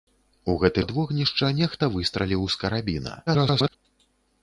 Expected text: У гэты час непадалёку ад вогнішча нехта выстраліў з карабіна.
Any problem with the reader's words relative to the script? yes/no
yes